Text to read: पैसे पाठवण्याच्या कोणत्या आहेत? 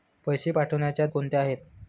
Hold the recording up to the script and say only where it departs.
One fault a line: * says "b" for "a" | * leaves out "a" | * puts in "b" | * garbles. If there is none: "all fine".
all fine